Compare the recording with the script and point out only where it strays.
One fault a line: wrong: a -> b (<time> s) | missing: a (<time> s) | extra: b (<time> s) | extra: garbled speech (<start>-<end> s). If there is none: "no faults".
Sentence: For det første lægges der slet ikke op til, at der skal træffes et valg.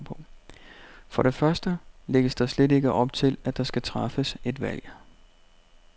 no faults